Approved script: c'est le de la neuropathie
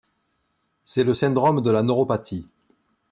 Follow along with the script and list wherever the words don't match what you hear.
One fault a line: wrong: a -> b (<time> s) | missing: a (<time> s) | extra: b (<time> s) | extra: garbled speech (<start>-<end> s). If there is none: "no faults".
extra: syndrome (1.1 s)